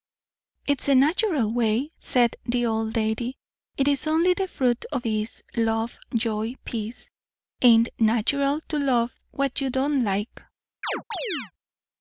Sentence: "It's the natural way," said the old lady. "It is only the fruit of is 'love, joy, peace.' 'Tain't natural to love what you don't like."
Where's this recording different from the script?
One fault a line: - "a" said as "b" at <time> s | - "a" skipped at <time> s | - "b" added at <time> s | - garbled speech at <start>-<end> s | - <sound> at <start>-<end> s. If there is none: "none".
- chirp at 10.8-11.5 s